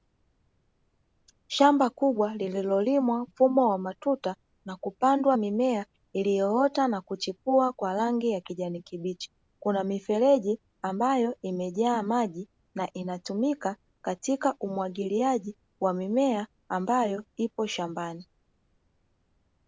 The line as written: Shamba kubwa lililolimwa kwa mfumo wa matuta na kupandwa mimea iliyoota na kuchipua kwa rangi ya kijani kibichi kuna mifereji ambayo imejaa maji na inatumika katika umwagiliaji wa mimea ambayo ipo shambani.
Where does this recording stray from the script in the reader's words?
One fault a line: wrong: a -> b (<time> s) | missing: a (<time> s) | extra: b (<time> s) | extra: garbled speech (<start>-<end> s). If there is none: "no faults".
missing: kwa (3.2 s)